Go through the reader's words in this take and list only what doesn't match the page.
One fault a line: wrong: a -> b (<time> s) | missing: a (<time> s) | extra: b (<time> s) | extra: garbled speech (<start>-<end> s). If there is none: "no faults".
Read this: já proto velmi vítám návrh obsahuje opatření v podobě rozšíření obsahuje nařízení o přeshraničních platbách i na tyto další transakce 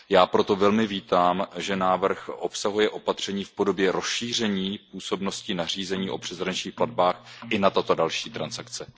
extra: že (1.6 s)
wrong: obsahuje -> působnosti (4.9 s)